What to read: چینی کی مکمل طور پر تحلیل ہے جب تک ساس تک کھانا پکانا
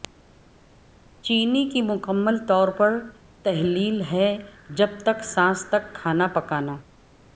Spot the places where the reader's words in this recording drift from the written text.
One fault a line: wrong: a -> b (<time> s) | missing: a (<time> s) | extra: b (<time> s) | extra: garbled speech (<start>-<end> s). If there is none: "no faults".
no faults